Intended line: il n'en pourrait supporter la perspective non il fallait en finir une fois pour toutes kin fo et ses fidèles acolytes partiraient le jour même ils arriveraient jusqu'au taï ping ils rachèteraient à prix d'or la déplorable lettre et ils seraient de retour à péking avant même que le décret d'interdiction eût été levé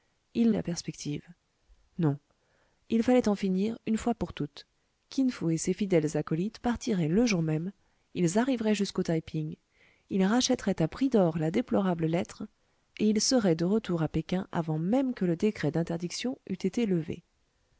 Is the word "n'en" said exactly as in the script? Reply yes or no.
no